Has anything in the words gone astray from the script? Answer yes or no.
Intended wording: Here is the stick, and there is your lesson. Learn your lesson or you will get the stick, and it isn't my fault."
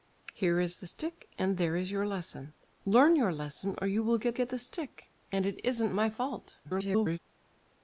yes